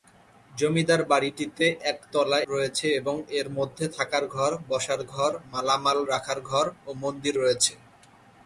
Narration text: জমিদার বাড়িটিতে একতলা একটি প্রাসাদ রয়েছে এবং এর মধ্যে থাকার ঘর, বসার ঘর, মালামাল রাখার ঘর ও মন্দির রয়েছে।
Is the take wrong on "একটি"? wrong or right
wrong